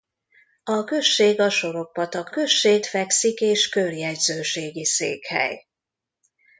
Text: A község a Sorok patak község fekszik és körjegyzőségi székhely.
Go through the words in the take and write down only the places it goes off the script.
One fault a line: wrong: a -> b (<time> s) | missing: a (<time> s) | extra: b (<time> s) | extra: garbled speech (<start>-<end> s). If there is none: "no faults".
no faults